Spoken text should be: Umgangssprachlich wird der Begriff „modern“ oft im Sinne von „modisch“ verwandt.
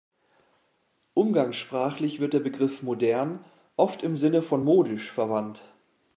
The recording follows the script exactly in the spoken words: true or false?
true